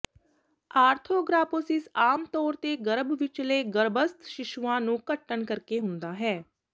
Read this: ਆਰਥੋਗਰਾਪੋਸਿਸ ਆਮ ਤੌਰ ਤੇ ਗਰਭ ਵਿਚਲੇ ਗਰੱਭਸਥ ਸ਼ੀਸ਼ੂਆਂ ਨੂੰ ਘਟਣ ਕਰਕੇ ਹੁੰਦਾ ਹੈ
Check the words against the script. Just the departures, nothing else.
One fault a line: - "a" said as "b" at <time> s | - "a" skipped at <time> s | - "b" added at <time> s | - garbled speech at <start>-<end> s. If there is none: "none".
none